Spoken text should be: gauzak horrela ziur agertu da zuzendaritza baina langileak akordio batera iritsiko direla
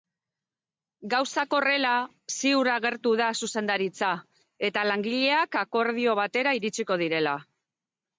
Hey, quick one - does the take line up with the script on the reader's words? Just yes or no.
no